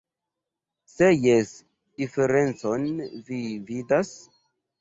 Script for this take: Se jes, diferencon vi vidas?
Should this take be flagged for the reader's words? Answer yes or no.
no